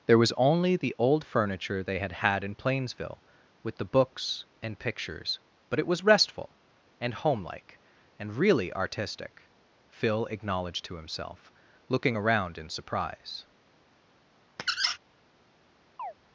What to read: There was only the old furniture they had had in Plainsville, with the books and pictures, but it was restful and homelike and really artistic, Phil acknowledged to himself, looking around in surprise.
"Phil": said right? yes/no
yes